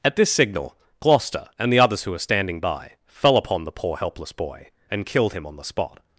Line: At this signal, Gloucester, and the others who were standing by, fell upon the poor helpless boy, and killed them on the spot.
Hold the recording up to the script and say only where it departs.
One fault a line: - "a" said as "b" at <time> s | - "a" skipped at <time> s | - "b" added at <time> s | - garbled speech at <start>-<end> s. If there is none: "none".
- "them" said as "him" at 5.3 s